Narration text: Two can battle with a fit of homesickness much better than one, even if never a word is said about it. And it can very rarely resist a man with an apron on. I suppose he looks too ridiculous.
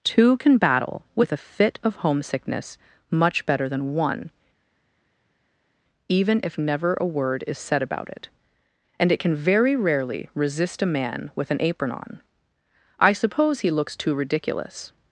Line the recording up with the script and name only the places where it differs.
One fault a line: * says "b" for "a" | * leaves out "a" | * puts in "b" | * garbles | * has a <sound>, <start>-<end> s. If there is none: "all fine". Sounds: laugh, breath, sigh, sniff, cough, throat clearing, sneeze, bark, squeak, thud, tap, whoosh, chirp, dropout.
all fine